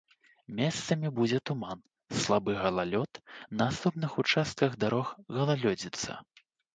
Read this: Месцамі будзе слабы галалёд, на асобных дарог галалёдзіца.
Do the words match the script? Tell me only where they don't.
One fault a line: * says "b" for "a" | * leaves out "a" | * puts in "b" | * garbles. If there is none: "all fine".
* puts in "туман"
* puts in "участках"